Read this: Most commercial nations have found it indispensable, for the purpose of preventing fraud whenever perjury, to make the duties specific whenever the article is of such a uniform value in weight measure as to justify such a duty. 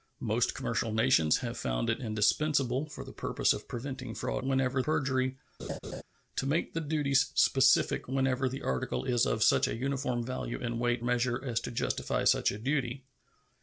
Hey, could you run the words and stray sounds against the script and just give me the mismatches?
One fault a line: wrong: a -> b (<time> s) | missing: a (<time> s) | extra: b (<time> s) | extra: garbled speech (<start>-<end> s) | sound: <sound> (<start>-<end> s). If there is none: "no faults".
sound: laugh (5.6-6.0 s)